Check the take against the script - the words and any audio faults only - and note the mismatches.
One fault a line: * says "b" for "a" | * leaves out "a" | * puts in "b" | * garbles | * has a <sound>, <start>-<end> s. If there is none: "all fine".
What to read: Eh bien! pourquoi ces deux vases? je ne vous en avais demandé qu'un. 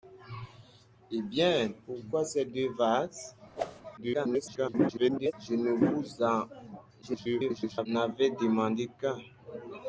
* has a whoosh, 3.6-3.8 s
* garbles
* garbles